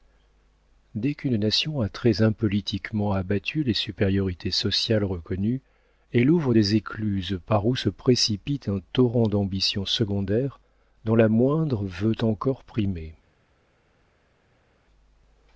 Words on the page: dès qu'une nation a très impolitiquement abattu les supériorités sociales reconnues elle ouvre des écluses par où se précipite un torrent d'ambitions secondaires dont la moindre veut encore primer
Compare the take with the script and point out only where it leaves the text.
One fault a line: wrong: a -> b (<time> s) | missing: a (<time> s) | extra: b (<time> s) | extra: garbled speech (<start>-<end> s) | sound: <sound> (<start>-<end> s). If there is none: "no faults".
no faults